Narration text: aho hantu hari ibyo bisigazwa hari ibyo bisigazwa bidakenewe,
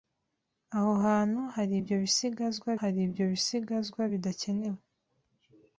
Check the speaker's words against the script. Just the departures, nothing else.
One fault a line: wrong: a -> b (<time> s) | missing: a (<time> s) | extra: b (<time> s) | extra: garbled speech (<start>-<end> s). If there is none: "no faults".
no faults